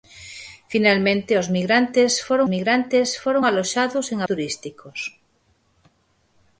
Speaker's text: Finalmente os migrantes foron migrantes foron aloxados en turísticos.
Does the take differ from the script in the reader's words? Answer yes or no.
no